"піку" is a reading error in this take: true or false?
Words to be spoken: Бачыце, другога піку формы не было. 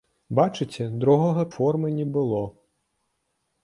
true